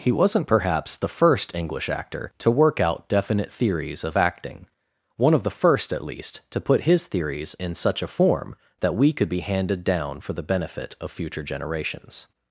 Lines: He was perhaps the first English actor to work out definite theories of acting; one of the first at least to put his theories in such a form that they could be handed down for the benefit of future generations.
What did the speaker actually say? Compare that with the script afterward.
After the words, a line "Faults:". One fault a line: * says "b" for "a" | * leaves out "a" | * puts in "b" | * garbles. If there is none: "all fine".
He wasn't perhaps the first English actor to work out definite theories of acting; one of the first at least to put his theories in such a form that we could be handed down for the benefit of future generations.
Faults:
* says "wasn't" for "was"
* says "we" for "they"